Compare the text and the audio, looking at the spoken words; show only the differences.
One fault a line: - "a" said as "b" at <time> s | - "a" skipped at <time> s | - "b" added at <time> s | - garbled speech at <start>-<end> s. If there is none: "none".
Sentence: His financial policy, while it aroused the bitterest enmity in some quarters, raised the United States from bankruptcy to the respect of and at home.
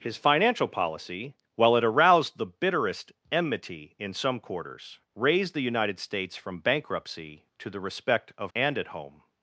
none